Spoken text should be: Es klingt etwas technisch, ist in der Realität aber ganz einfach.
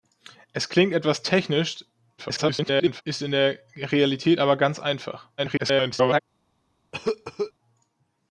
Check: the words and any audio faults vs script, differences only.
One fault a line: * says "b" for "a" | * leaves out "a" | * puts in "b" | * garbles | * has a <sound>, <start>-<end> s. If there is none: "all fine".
* garbles
* garbles
* has a cough, 6.9-7.5 s